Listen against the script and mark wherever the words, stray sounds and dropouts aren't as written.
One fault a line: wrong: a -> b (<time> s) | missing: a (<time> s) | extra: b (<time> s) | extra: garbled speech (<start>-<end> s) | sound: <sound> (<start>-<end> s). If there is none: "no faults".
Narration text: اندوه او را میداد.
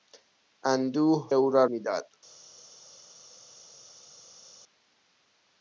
no faults